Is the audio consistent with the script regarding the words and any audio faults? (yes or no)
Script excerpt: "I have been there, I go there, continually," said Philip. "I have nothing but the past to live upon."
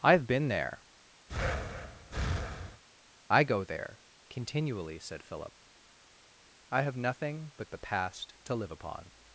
no